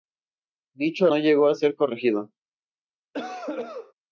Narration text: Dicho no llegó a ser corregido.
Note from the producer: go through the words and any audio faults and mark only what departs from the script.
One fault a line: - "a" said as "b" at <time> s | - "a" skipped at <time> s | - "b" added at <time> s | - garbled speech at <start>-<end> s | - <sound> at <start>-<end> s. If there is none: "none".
- cough at 3.1-3.9 s